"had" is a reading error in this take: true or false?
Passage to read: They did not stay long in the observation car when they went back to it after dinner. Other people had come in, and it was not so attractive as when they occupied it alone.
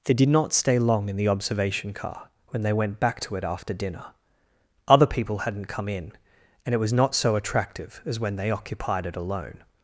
true